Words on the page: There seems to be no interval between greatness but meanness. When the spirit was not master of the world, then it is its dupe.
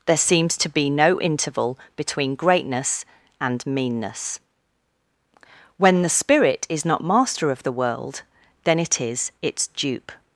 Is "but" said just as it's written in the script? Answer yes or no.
no